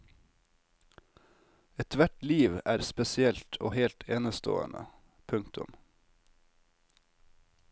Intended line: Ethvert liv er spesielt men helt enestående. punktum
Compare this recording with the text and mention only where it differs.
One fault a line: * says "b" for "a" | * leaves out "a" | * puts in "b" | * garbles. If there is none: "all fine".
* says "og" for "men"